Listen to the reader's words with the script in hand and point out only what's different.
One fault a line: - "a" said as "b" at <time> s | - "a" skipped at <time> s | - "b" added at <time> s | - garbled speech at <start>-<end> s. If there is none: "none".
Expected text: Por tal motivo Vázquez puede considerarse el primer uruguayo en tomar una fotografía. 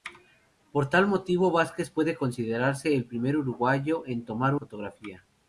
- "una" skipped at 4.5 s